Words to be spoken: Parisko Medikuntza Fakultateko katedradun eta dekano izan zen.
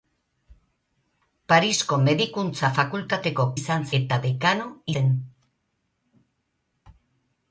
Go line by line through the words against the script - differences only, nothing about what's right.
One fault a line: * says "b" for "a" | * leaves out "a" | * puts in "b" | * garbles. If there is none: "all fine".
* says "izan" for "katedradun"
* leaves out "izan"